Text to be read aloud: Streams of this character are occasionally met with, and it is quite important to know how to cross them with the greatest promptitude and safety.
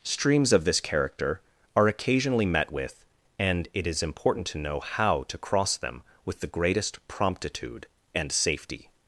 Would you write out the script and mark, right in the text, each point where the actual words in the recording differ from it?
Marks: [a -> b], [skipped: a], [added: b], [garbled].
Streams of this character are occasionally met with, and it is [skipped: quite] important to know how to cross them with the greatest promptitude and safety.